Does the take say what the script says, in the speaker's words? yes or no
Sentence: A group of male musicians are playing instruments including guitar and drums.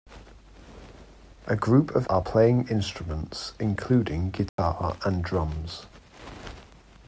no